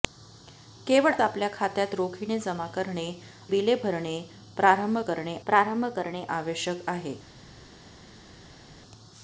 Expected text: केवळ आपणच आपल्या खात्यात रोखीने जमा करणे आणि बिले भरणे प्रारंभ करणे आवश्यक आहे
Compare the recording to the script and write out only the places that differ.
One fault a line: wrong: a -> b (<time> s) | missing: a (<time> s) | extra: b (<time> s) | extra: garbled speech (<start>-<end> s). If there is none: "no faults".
missing: आपणच (1.1 s)
missing: आणि (3.1 s)
extra: प्रारंभ करणे (5.5 s)